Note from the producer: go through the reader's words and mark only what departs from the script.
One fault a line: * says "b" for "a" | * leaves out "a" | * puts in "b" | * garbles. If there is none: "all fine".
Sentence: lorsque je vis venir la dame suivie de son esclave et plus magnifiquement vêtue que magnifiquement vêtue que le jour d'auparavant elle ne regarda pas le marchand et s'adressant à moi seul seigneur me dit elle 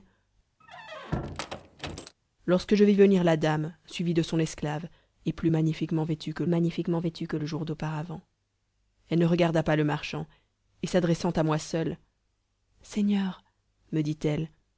all fine